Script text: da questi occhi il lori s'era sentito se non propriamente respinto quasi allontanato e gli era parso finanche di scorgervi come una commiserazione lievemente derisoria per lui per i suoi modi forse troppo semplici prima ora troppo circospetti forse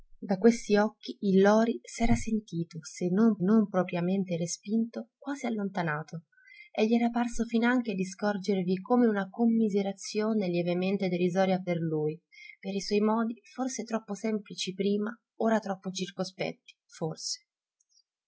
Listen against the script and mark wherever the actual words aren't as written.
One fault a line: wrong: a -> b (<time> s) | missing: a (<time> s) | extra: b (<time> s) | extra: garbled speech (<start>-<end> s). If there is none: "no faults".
extra: non (3.4 s)